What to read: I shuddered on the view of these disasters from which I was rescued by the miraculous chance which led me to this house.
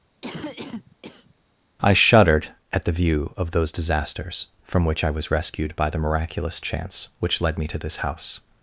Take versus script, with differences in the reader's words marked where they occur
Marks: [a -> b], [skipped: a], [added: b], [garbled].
I shuddered [on -> at] the view of [these -> those] disasters from which I was rescued by the miraculous chance which led me to this house.